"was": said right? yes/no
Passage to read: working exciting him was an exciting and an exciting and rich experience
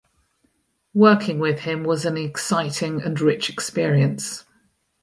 yes